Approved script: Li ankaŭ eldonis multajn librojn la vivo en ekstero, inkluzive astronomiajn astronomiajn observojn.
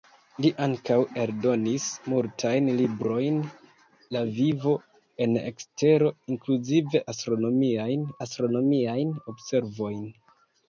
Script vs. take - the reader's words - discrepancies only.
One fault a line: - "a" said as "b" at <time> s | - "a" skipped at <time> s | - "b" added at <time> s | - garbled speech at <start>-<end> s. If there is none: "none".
none